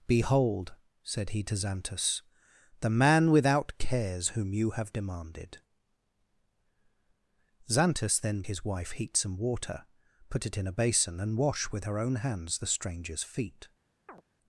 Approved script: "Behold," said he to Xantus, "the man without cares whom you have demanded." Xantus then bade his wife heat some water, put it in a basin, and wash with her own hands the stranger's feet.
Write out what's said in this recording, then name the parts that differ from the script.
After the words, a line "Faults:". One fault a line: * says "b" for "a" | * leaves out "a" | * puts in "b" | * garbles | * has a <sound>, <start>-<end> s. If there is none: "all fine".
"Behold," said he to Xantus, "the man without cares whom you have demanded." Xantus then his wife heat some water, put it in a basin, and wash with her own hands the stranger's feet.
Faults:
* leaves out "bade"
* has a chirp, 14.1-14.2 s